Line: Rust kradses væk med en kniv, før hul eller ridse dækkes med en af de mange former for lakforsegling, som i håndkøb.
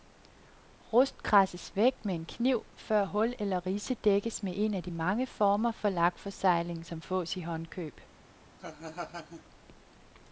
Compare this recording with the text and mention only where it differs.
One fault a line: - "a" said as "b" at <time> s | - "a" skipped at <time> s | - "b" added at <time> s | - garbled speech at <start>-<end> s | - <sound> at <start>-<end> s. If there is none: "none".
- "fås" added at 7.0 s
- laugh at 8.6-9.4 s